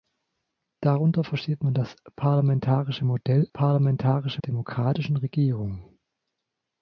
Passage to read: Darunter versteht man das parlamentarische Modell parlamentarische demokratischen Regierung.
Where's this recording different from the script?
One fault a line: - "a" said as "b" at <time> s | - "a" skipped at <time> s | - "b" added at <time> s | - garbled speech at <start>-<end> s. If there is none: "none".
none